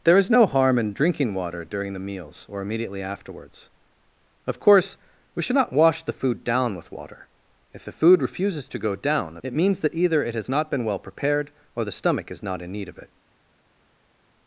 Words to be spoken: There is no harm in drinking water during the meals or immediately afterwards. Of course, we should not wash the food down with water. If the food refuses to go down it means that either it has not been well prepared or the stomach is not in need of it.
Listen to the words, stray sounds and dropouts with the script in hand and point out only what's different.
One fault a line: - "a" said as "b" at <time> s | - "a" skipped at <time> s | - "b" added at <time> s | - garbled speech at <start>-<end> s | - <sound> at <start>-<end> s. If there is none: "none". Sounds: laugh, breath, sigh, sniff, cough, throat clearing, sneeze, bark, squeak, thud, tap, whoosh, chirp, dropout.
none